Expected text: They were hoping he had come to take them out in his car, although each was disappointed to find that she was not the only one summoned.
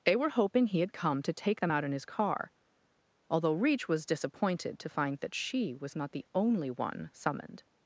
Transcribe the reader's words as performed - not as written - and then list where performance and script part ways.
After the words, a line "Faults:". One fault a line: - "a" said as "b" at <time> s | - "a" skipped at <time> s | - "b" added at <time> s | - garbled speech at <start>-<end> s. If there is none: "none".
They were hoping he had come to take them out in his car, although reach was disappointed to find that she was not the only one summoned.
Faults:
- "each" said as "reach" at 3.5 s